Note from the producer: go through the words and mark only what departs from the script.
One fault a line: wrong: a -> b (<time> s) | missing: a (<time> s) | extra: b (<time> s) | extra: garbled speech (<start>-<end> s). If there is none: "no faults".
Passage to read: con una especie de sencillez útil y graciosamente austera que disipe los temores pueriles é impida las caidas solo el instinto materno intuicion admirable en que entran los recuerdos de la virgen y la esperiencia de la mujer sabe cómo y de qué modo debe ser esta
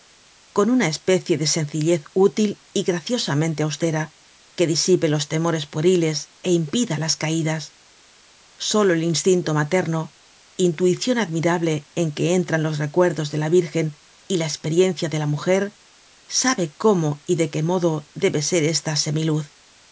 no faults